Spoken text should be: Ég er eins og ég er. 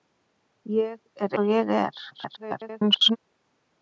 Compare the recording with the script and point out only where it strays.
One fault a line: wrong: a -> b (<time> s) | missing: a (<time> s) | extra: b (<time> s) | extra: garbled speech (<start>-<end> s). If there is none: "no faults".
missing: eins (1.4 s)
extra: garbled speech (2.1-3.2 s)